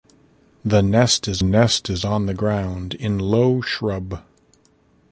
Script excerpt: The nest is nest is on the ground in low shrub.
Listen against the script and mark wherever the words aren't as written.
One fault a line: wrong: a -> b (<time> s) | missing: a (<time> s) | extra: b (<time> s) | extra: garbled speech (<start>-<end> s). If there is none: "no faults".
no faults